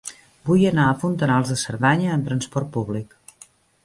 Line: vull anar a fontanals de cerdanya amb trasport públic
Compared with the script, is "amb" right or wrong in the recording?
right